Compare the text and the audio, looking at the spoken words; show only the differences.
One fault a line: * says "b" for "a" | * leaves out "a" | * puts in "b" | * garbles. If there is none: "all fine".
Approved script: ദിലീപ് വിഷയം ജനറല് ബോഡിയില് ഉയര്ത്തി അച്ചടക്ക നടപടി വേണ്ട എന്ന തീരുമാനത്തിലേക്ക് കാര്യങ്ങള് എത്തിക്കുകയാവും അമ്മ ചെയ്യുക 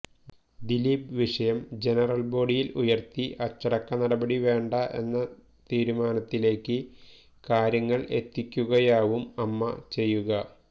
all fine